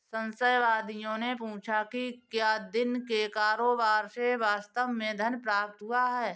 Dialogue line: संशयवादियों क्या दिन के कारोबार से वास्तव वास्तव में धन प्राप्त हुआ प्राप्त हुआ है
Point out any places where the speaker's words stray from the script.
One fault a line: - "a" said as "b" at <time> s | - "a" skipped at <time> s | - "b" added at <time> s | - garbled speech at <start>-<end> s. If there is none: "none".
- "ने पूछा कि" added at 1.2 s
- "वास्तव" skipped at 4.9 s
- "प्राप्त हुआ" skipped at 6.0 s